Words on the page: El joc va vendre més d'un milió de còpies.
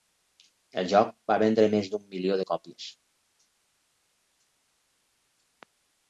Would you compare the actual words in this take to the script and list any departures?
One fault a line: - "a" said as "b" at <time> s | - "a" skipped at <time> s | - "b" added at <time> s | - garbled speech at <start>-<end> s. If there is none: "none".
none